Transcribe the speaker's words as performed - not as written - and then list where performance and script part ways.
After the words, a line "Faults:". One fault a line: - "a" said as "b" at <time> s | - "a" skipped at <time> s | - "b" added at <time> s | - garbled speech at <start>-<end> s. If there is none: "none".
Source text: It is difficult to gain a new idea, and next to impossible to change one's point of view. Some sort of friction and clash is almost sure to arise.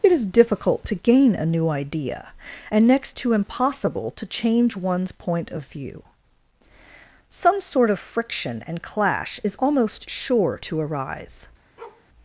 It is difficult to gain a new idea, and next to impossible to change one's point of view. Some sort of friction and clash is almost sure to arise.
Faults:
none